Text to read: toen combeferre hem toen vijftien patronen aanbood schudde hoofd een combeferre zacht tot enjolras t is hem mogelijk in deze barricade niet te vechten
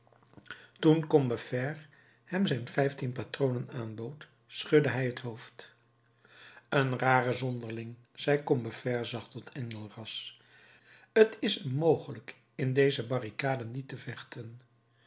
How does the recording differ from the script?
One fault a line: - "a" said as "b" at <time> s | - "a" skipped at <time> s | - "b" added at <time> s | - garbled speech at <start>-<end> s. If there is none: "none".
- "toen" said as "zijn" at 2.4 s
- "hij het" added at 4.9 s
- "rare zonderling zei" added at 7.0 s